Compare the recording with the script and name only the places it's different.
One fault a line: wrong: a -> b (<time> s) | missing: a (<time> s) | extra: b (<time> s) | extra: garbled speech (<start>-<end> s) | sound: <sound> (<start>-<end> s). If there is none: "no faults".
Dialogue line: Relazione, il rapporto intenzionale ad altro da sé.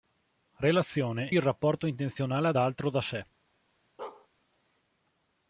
sound: bark (4.0-4.3 s)